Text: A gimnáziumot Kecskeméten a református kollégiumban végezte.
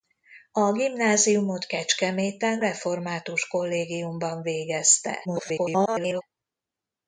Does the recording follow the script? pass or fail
fail